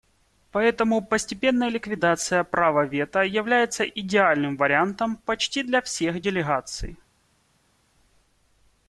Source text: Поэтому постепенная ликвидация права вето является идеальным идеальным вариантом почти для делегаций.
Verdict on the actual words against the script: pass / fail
fail